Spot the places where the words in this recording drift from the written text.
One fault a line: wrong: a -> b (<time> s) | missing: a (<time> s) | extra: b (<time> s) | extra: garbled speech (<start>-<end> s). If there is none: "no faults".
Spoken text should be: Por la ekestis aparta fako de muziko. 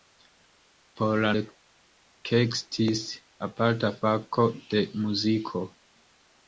no faults